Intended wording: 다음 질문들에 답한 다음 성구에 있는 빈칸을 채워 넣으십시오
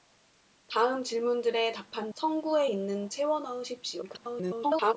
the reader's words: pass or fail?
fail